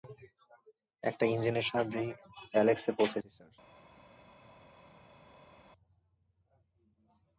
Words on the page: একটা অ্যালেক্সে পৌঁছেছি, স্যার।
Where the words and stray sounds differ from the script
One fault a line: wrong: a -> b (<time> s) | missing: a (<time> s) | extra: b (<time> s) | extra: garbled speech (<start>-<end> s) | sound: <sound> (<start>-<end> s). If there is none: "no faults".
extra: ইঞ্জিনের সাহায্যেই (1.2 s)